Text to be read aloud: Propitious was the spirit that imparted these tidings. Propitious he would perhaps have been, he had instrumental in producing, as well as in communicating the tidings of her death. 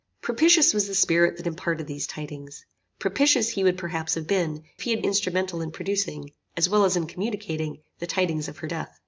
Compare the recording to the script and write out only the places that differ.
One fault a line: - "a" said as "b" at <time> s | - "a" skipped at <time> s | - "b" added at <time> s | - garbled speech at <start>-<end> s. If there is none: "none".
none